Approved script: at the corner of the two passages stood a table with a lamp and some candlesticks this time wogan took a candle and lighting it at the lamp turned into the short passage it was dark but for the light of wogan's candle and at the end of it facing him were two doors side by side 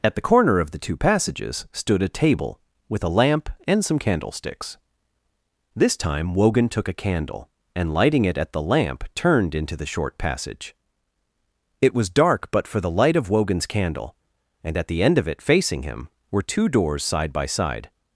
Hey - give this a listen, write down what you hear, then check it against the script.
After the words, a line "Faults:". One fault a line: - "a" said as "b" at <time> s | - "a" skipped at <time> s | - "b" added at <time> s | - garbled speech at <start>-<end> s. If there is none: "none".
at the corner of the two passages stood a table with a lamp and some candlesticks this time wogan took a candle and lighting it at the lamp turned into the short passage it was dark but for the light of wogan's candle and at the end of it facing him were two doors side by side
Faults:
none